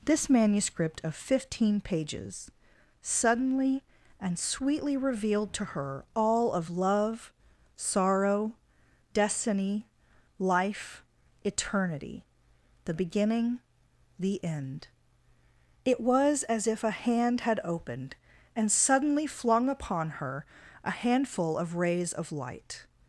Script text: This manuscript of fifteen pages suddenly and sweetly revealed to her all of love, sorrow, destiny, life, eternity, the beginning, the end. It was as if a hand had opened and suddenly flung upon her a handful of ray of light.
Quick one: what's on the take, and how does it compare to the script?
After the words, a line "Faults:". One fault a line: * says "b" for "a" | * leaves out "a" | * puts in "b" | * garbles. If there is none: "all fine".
This manuscript of fifteen pages suddenly and sweetly revealed to her all of love, sorrow, destiny, life, eternity, the beginning, the end. It was as if a hand had opened and suddenly flung upon her a handful of rays of light.
Faults:
* says "rays" for "ray"